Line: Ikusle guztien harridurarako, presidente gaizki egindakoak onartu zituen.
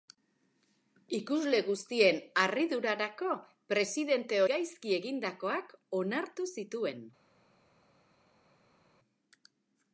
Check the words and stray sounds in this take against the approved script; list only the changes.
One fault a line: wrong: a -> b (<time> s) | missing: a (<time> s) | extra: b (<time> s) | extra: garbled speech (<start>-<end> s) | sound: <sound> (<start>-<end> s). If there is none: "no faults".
no faults